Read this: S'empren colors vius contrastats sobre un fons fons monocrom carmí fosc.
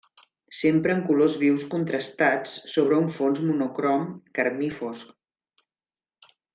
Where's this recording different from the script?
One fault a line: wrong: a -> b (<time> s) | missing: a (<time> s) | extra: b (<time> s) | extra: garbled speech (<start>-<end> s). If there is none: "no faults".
missing: fons (3.4 s)